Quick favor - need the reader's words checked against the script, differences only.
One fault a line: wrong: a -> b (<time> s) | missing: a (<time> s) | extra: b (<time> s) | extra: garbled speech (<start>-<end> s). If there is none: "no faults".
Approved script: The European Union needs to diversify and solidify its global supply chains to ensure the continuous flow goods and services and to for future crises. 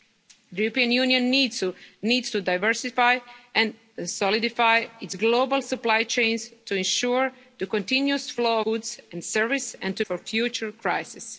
no faults